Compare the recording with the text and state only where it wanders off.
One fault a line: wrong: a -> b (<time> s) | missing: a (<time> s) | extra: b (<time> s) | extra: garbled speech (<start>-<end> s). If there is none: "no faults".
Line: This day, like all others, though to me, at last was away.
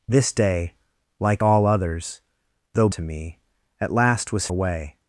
no faults